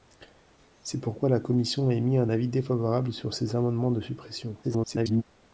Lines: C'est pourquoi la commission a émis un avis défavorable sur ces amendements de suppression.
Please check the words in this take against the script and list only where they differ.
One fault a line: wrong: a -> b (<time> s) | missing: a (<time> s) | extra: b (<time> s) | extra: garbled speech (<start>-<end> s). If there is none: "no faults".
extra: garbled speech (4.6-5.2 s)